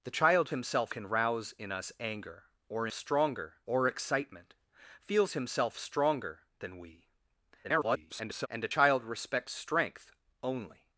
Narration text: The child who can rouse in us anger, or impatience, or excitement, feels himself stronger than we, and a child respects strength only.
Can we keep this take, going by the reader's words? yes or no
no